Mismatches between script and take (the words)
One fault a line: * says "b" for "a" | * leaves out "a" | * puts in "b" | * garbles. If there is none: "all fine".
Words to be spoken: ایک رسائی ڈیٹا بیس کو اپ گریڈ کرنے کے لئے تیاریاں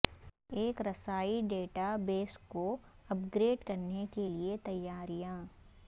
all fine